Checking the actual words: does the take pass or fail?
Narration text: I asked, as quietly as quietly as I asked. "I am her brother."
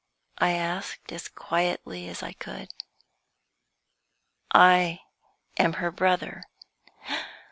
fail